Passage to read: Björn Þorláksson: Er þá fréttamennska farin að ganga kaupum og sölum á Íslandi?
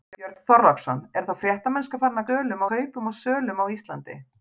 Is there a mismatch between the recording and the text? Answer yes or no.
yes